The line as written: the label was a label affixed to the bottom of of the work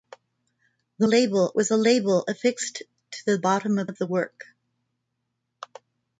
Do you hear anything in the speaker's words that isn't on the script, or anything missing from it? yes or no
no